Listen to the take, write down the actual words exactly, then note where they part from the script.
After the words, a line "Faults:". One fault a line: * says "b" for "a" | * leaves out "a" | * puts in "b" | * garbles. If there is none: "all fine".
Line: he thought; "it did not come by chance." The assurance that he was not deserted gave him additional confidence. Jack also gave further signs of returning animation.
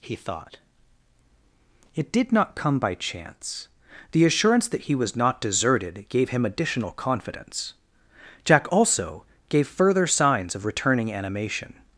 he thought; "it did not come by chance." The assurance that he was not deserted gave him additional confidence. Jack also gave further signs of returning animation.
Faults:
all fine